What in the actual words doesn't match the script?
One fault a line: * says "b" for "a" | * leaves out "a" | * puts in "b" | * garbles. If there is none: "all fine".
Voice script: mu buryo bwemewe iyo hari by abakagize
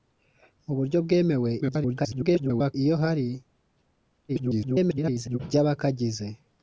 * garbles
* garbles